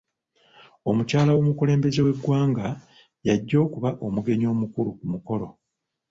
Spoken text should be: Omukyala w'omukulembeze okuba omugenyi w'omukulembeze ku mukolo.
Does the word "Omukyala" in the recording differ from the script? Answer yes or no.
no